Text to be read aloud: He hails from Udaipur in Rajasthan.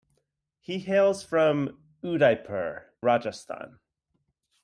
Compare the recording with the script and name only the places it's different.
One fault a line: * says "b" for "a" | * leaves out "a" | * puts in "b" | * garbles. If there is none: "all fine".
* leaves out "in"